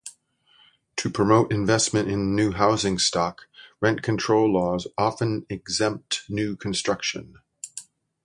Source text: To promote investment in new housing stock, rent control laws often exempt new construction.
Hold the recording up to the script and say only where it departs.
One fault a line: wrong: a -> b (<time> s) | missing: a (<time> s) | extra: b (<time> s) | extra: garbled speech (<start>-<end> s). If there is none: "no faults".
no faults